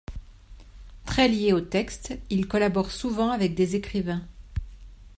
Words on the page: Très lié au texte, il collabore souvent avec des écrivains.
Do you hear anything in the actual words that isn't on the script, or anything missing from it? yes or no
no